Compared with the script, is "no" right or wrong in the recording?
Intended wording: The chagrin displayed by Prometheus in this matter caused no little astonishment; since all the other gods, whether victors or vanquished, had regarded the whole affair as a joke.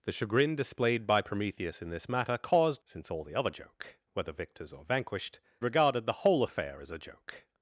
wrong